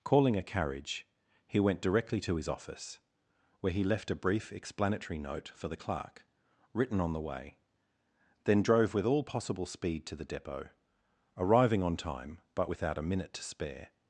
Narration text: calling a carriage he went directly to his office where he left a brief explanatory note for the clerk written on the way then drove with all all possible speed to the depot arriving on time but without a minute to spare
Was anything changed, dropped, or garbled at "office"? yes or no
no